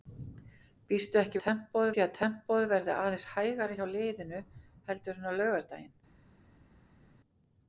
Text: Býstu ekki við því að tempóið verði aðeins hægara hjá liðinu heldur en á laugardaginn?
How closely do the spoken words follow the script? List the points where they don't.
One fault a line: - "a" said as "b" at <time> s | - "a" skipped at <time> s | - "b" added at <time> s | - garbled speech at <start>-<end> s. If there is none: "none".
- "við" said as "tempóið" at 1.4 s